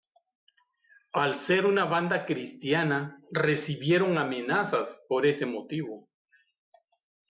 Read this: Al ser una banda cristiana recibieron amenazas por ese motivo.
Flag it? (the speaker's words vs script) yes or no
no